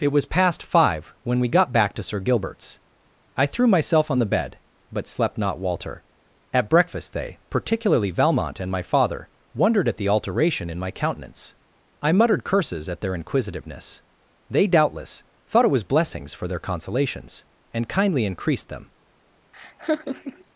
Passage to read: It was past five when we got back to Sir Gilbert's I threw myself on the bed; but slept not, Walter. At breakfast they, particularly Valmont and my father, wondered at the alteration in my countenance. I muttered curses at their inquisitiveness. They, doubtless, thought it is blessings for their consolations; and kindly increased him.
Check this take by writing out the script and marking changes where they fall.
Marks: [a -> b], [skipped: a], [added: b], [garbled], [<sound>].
It was past five when we got back to Sir Gilbert's I threw myself on the bed; but slept not, Walter. At breakfast they, particularly Valmont and my father, wondered at the alteration in my countenance. I muttered curses at their inquisitiveness. They, doubtless, thought it [is -> was] blessings for their consolations; and kindly increased [him. -> them] [laugh]